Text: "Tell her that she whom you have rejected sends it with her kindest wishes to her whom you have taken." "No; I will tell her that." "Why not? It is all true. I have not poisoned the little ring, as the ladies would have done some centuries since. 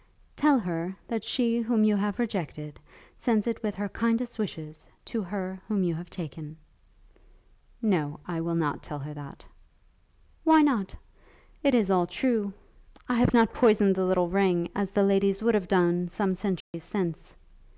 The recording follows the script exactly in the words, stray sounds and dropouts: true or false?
false